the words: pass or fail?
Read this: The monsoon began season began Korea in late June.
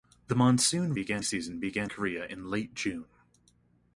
pass